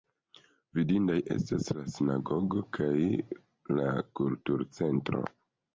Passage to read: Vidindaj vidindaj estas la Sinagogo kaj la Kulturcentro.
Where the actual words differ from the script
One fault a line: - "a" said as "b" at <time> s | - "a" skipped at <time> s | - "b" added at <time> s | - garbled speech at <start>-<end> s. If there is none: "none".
- "vidindaj" skipped at 1.2 s